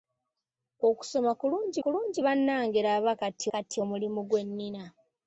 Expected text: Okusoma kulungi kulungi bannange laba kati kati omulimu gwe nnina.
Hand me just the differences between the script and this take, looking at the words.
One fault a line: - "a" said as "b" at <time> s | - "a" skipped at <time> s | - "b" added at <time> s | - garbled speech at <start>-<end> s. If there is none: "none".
none